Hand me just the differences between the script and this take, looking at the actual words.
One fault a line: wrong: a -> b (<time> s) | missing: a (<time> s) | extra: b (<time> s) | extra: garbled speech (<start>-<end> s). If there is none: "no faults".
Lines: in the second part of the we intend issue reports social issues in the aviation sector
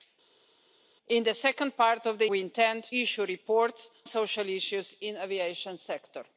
no faults